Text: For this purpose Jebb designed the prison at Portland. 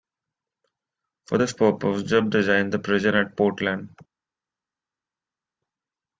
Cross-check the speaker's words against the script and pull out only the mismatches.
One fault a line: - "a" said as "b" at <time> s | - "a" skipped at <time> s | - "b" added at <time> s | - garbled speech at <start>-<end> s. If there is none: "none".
none